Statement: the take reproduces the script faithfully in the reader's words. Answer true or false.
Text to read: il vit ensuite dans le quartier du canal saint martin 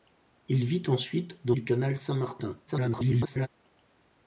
false